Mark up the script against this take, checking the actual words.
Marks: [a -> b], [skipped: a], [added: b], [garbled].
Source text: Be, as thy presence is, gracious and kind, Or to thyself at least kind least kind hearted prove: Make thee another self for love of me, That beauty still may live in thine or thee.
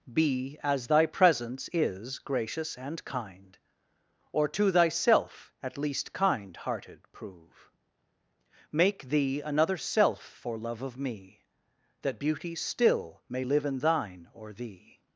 Be, as thy presence is, gracious and kind, Or to thyself at least kind [skipped: least kind] hearted prove: Make thee another self for love of me, That beauty still may live in thine or thee.